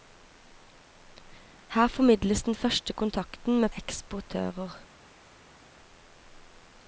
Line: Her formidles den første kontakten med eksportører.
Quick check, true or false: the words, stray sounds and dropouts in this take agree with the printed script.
true